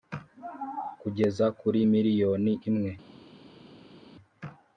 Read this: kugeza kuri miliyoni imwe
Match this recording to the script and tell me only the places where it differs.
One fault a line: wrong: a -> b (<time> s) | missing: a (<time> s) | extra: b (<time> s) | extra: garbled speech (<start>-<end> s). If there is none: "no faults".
no faults